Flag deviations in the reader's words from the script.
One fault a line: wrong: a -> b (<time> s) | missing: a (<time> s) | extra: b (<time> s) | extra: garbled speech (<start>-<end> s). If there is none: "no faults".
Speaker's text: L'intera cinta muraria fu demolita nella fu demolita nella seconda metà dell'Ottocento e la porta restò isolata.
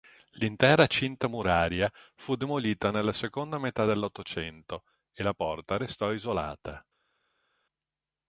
missing: fu demolita nella (3.1 s)